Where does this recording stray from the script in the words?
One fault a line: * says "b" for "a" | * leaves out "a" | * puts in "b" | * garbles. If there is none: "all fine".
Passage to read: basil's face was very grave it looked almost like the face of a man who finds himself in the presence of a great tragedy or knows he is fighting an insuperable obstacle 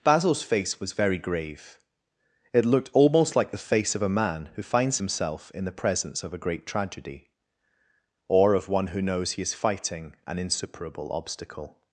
* puts in "of one who"